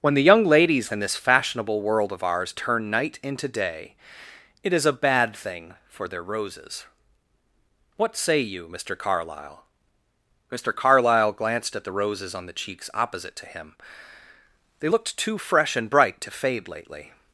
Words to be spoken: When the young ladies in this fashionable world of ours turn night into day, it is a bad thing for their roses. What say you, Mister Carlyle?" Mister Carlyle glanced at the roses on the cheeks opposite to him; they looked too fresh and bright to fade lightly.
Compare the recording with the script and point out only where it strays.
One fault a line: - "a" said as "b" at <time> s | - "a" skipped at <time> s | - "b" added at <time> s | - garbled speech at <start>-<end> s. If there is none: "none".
- "lightly" said as "lately" at 16.7 s